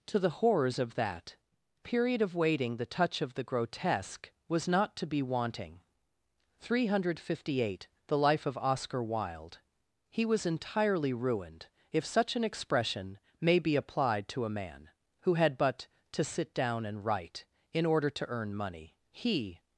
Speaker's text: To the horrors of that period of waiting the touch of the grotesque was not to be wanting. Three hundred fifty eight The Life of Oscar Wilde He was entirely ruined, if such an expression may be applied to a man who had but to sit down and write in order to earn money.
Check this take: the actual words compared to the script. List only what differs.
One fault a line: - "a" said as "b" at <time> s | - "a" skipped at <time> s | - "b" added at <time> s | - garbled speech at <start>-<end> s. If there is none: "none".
- "He" added at 19.1 s